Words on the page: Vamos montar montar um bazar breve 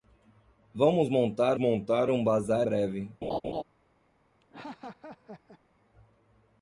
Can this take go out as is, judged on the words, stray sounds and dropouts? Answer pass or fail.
fail